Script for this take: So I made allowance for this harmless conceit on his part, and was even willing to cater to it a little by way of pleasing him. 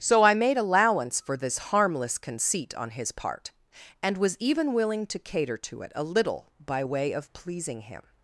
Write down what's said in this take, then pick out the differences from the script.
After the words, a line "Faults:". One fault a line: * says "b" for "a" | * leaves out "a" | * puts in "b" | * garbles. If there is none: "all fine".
So I made allowance for this harmless conceit on his part, and was even willing to cater to it a little by way of pleasing him.
Faults:
all fine